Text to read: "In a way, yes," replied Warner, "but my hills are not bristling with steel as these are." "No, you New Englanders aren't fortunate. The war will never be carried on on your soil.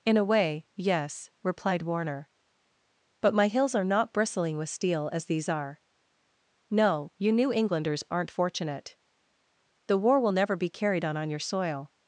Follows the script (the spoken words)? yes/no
yes